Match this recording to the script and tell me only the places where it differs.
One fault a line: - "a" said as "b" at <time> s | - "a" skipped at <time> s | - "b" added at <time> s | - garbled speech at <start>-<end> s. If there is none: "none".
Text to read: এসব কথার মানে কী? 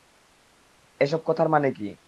none